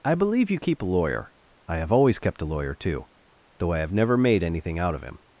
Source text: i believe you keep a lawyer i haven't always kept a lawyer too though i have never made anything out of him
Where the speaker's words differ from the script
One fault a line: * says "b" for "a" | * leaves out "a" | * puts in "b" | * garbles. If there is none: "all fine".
* says "have" for "haven't"